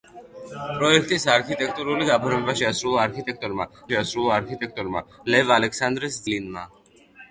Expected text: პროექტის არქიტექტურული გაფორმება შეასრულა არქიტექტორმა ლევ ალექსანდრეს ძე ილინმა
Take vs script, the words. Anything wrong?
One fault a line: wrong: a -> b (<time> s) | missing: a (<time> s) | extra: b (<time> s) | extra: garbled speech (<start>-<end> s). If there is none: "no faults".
extra: შეასრულა არქიტექტორმა (3.9 s)
missing: ძე (6.2 s)